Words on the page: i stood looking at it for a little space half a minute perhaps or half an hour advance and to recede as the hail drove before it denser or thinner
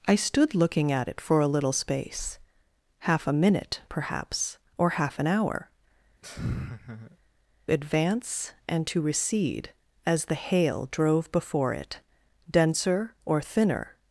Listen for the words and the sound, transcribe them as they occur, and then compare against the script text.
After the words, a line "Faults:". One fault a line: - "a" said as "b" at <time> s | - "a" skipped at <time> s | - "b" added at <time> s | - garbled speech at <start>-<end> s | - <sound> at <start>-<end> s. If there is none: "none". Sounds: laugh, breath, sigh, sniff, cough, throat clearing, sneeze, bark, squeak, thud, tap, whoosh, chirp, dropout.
i stood looking at it for a little space half a minute perhaps or half an hour advance and to recede as the hail drove before it denser or thinner
Faults:
- laugh at 6.2-7.2 s